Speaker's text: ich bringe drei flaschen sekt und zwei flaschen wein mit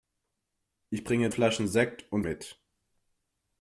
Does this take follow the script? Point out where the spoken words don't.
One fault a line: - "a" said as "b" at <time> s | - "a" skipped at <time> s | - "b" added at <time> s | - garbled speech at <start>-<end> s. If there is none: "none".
- "drei" skipped at 1.3 s
- "zwei flaschen wein" skipped at 2.2 s